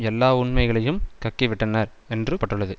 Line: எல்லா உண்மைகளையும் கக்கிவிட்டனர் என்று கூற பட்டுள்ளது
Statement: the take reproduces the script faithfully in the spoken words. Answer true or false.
false